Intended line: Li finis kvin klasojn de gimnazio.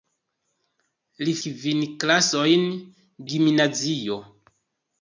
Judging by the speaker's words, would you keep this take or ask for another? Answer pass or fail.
fail